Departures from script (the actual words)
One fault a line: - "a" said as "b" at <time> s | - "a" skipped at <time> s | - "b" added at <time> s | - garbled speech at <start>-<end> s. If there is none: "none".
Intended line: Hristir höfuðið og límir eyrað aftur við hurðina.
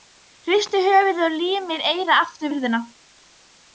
- "við" skipped at 2.5 s